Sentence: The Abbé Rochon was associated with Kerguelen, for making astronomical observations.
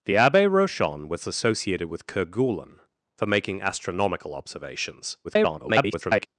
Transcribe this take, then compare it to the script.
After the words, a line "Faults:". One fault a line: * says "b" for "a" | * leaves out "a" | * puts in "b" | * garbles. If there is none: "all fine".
The Abbé Rochon was associated with Kerguelen, for making astronomical observations. [garbled]
Faults:
* garbles